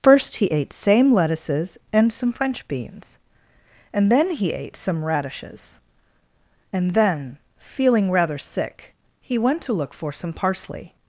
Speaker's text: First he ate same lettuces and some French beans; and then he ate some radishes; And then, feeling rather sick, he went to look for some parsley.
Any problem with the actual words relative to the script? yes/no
no